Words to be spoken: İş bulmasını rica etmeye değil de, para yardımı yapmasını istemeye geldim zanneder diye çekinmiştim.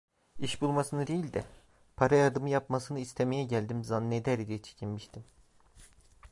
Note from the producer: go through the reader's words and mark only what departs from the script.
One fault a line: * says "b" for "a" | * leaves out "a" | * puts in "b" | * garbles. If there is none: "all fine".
* leaves out "rica etmeye"